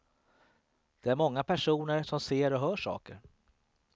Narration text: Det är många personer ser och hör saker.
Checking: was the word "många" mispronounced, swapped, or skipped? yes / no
no